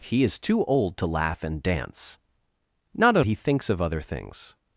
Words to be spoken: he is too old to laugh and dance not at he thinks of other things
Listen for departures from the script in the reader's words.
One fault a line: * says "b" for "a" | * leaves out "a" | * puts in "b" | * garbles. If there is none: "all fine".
all fine